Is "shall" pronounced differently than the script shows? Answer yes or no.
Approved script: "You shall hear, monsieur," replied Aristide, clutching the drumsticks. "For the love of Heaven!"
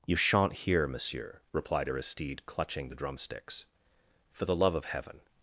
yes